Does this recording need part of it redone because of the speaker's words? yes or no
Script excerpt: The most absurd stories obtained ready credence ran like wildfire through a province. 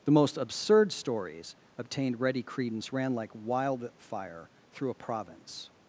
no